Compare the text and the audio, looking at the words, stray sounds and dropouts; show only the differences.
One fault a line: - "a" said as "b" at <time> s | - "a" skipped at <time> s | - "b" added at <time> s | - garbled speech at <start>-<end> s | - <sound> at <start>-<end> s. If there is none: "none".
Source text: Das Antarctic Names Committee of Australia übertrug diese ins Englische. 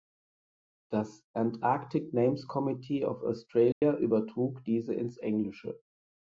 - dropout at 3.7-3.8 s